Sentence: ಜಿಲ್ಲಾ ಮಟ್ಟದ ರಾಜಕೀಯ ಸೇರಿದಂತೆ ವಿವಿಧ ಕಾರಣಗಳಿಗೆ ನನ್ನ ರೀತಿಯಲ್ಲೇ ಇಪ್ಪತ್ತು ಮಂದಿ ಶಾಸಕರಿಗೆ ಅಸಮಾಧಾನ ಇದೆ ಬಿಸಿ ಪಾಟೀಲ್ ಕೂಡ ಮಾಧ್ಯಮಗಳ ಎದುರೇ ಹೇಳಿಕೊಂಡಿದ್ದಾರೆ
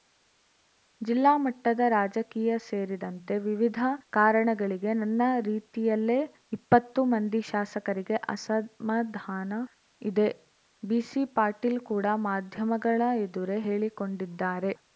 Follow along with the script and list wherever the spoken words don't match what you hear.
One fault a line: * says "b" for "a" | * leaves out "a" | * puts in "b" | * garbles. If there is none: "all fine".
all fine